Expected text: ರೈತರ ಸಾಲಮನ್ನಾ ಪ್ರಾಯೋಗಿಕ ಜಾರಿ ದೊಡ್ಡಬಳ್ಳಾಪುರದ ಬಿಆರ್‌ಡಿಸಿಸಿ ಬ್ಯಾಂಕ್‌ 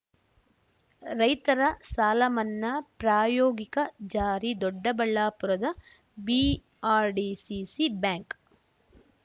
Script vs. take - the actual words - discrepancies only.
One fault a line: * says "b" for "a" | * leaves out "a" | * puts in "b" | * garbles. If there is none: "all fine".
all fine